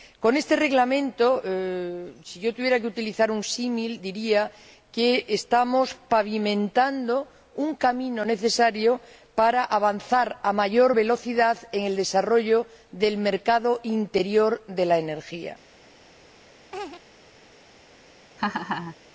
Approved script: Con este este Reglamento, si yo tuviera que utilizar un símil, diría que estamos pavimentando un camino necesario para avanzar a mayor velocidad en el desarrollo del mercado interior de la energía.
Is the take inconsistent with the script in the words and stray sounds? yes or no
yes